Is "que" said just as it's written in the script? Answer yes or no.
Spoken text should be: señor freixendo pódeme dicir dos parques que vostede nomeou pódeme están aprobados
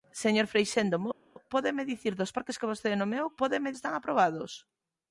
yes